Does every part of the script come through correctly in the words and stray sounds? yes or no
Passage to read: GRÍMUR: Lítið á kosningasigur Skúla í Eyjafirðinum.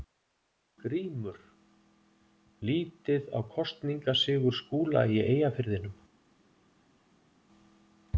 yes